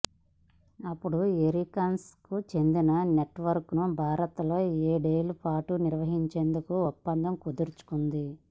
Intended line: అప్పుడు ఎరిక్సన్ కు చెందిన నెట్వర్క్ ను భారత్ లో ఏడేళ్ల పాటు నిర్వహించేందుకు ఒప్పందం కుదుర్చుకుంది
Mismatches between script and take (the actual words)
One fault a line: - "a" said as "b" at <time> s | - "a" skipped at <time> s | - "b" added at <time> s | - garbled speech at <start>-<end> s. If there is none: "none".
none